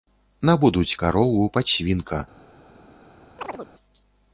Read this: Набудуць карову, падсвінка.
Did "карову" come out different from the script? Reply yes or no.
no